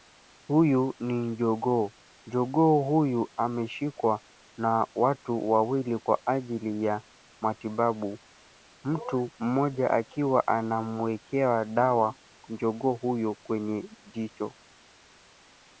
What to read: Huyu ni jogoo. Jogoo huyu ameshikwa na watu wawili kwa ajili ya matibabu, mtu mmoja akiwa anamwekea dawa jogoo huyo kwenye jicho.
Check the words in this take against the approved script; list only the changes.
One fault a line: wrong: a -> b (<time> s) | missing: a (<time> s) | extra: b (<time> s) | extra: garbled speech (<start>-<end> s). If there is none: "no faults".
no faults